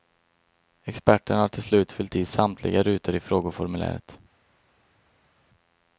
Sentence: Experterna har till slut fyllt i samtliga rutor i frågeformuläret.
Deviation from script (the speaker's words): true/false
false